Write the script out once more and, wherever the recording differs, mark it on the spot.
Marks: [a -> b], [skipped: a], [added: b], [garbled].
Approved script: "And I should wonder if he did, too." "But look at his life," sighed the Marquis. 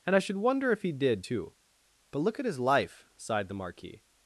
"And I should wonder if he did, too." "But look at his life," sighed the Marquis.